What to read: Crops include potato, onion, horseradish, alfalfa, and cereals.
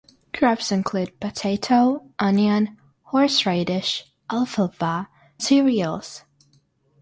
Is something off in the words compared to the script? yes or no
yes